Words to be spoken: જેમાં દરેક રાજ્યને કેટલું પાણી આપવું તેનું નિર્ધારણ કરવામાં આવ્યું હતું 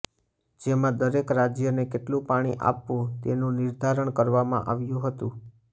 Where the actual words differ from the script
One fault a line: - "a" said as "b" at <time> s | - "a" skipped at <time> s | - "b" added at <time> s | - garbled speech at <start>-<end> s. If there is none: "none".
none